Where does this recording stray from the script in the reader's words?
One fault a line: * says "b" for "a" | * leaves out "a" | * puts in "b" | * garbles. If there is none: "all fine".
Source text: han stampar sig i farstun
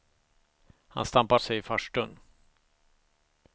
all fine